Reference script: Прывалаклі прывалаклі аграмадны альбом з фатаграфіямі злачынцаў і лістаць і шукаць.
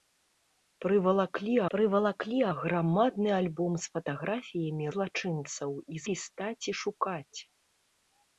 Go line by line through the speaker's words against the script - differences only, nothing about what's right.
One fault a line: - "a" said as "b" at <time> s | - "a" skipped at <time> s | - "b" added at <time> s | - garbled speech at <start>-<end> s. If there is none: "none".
none